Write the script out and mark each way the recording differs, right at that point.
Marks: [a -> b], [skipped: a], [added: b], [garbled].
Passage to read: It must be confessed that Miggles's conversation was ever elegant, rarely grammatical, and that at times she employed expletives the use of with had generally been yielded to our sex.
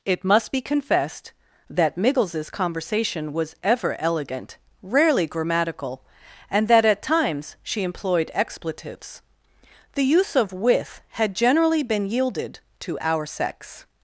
It must be confessed that Miggles's conversation was ever elegant, rarely grammatical, and that at times she employed expletives the use of with had generally been yielded to our sex.